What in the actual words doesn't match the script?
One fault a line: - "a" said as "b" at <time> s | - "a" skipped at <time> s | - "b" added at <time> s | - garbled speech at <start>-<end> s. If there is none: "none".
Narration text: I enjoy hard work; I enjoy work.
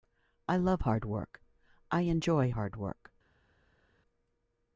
- "enjoy" said as "love" at 0.6 s
- "hard" added at 2.5 s